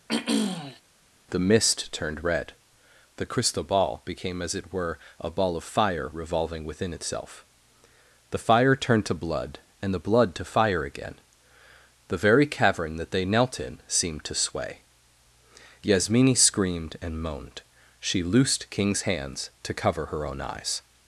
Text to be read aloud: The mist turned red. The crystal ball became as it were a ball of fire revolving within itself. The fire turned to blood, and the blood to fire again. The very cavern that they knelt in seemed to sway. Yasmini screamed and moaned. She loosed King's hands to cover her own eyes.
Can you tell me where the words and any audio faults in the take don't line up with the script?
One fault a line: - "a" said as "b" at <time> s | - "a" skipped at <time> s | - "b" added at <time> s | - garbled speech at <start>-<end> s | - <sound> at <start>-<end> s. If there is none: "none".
- throat clearing at 0.1-0.8 s